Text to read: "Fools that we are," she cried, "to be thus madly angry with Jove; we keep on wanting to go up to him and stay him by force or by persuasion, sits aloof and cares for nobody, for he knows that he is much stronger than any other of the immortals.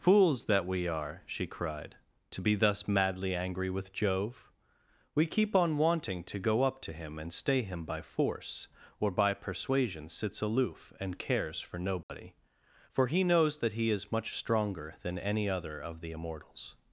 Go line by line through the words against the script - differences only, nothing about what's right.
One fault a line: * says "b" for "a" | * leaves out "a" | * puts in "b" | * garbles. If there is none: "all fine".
all fine